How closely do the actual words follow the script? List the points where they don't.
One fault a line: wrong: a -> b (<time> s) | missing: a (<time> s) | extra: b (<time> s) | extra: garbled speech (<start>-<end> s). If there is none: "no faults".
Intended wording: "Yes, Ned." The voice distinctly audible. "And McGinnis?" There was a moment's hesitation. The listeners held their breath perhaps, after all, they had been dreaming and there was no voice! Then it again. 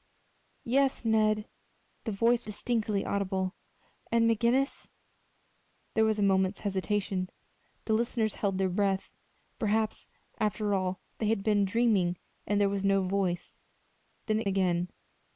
no faults